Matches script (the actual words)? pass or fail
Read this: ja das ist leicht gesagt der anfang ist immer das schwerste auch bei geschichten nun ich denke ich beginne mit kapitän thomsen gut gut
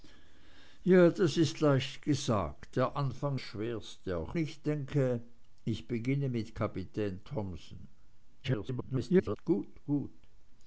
fail